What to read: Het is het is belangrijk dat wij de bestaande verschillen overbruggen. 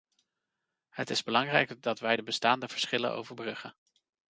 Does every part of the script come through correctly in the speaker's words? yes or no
no